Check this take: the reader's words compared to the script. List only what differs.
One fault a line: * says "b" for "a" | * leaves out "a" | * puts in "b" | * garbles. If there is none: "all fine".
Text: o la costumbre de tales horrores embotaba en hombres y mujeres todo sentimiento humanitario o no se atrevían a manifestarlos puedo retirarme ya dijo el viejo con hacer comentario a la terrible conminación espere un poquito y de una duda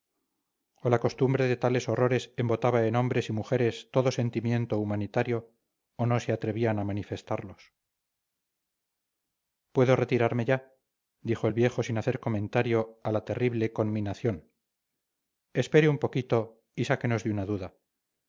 * says "sin" for "con"
* puts in "sáquenos"